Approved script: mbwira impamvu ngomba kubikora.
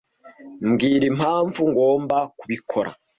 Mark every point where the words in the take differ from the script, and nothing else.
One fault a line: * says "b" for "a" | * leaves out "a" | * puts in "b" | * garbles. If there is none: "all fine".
all fine